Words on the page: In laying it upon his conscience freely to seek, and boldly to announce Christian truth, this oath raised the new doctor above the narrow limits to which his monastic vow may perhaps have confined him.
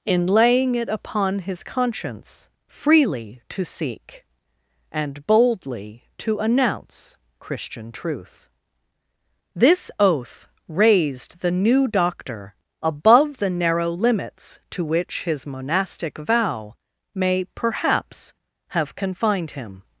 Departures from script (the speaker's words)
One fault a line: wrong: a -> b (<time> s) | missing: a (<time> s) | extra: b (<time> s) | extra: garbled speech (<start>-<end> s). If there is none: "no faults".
no faults